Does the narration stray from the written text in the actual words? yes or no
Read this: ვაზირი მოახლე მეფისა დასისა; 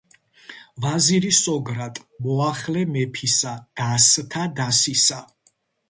yes